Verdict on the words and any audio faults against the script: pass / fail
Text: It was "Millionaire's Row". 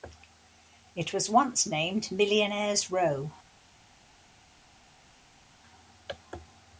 fail